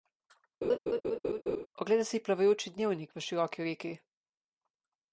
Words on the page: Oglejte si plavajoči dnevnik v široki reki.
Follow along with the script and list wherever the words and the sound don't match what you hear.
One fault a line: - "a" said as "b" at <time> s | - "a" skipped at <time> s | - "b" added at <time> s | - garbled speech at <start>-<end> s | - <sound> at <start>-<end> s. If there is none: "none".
- laugh at 0.6-1.7 s